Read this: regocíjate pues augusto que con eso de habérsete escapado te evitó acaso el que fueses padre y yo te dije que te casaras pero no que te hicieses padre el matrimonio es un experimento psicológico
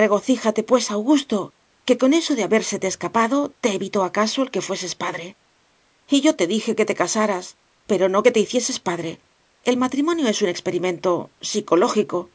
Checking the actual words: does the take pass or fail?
pass